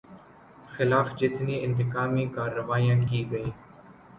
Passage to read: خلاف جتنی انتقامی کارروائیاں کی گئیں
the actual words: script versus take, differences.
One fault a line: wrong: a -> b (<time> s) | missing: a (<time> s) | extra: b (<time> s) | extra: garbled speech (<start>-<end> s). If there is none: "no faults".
no faults